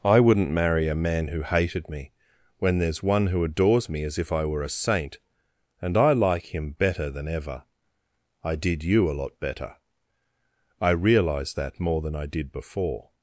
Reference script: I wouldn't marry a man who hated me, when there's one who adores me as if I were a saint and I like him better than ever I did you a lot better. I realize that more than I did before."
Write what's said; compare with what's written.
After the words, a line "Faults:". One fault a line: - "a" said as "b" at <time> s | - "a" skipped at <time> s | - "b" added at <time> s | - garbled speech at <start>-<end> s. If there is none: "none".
I wouldn't marry a man who hated me, when there's one who adores me as if I were a saint and I like him better than ever I did you a lot better. I realize that more than I did before."
Faults:
none